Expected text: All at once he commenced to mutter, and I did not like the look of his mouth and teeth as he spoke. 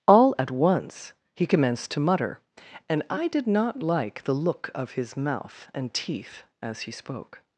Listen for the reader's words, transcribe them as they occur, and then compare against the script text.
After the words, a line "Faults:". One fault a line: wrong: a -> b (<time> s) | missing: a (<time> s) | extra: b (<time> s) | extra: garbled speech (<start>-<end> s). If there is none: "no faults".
All at once he commenced to mutter, and I did not like the look of his mouth and teeth as he spoke.
Faults:
no faults